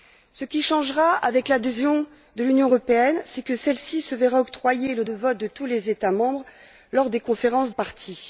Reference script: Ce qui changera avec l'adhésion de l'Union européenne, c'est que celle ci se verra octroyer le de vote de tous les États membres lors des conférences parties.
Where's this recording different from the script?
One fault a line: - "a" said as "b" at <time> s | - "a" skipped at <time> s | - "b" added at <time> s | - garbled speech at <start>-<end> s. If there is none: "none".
none